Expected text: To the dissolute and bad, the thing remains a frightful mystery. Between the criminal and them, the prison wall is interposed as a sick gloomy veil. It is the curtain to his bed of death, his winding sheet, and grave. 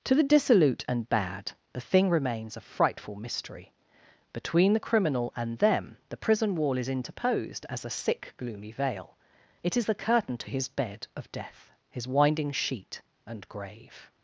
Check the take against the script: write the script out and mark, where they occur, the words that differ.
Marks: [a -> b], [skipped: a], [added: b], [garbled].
To the dissolute and bad, the thing remains a frightful mystery. Between the criminal and them, the prison wall is interposed as a sick gloomy veil. It is the curtain to his bed of death, his winding sheet, and grave.